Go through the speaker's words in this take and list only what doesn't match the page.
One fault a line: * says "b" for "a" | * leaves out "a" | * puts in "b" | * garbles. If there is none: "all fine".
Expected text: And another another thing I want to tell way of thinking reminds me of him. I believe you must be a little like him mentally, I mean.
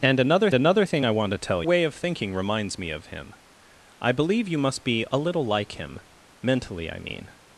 all fine